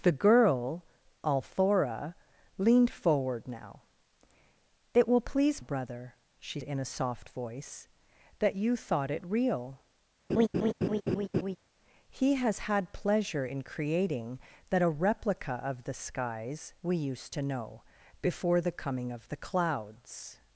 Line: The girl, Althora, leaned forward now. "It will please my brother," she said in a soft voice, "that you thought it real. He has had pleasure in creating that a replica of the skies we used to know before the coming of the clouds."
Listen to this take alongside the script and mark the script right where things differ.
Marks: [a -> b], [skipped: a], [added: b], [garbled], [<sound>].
The girl, Althora, leaned forward now. "It will please [skipped: my] brother," she [skipped: said] in a soft voice, "that you thought it real. [laugh] He has had pleasure in creating that a replica of the skies we used to know before the coming of the clouds."